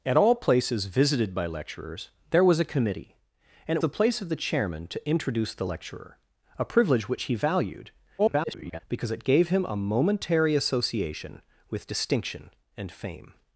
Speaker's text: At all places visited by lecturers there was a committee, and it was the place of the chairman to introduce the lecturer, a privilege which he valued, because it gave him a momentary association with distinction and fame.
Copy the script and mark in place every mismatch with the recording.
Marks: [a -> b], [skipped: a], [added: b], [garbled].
At all places visited by lecturers there was a committee, and it [skipped: was] the place of the chairman to introduce the lecturer, a privilege which he valued, [garbled] because it gave him a momentary association with distinction and fame.